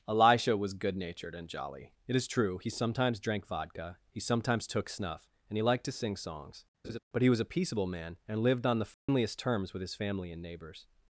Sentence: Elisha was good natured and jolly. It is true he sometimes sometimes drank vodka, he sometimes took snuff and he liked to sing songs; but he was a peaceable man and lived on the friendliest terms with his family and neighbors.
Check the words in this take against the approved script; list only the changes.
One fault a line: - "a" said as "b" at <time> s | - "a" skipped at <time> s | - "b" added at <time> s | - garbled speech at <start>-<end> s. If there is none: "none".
- "sometimes" skipped at 3.2 s